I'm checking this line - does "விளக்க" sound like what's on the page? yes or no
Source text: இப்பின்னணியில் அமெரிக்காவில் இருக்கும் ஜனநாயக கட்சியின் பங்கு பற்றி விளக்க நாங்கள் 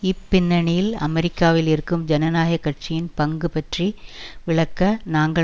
yes